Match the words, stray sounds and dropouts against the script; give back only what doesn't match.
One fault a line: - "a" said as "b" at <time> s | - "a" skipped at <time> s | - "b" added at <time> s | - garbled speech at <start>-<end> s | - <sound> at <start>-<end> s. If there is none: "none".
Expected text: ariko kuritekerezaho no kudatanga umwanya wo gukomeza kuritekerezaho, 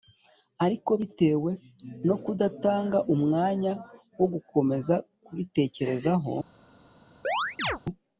- "kuritekerezaho" said as "bitewe" at 1.0 s
- chirp at 7.2-7.8 s